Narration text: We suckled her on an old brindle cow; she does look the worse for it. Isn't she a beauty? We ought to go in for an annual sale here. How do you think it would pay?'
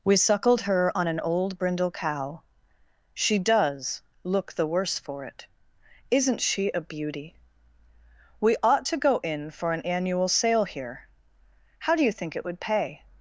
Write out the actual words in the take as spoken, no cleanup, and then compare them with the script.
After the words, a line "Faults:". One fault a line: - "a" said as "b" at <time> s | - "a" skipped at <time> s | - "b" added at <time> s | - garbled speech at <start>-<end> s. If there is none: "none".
We suckled her on an old brindle cow; she does look the worse for it. Isn't she a beauty? We ought to go in for an annual sale here. How do you think it would pay?'
Faults:
none